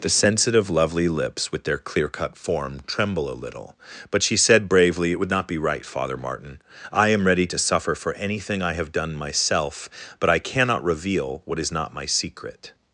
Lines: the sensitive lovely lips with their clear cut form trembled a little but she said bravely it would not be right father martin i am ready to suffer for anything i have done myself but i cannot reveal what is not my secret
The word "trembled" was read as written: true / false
false